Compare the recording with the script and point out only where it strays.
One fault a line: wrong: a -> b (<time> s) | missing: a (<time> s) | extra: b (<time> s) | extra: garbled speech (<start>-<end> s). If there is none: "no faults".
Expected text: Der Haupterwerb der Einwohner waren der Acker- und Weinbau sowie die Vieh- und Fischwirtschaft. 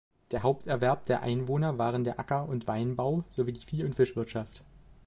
no faults